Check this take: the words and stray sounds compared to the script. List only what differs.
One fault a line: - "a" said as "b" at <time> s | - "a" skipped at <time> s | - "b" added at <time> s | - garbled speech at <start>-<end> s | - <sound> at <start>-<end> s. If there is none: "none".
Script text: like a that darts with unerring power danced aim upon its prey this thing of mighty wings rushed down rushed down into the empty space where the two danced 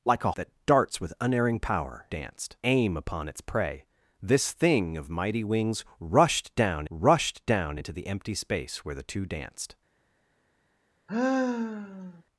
- sigh at 11.1-12.2 s